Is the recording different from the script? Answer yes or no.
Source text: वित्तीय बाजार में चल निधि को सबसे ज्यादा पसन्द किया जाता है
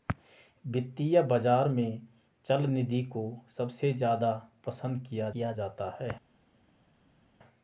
yes